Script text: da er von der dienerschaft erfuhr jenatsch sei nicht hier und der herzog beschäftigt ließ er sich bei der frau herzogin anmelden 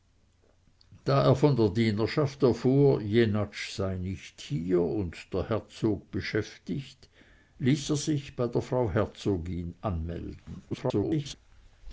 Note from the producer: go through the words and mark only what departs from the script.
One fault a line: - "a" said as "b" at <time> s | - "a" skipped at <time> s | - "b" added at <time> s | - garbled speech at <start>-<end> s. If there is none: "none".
- garbled speech at 10.7-11.3 s